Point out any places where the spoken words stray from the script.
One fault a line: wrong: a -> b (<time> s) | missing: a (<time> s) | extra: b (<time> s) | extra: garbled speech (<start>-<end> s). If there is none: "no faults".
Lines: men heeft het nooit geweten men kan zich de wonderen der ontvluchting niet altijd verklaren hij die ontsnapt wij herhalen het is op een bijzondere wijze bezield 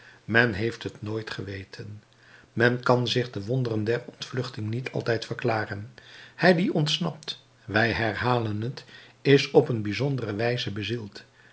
no faults